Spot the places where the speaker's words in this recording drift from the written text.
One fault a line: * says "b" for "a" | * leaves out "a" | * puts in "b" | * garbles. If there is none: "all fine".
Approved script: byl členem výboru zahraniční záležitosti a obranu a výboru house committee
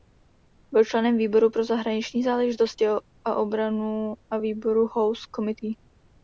* puts in "pro"